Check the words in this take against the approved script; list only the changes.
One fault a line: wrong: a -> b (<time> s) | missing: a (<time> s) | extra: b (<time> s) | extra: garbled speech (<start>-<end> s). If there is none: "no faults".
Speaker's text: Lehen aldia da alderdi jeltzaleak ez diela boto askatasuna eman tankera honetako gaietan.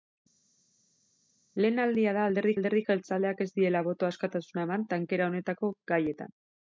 extra: alderdi (2.6 s)